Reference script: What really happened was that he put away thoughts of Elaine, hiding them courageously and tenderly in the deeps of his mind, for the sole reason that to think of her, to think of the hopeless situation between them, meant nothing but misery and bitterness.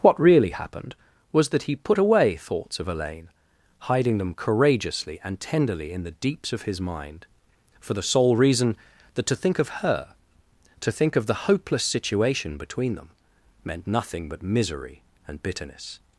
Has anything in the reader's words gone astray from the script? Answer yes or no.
no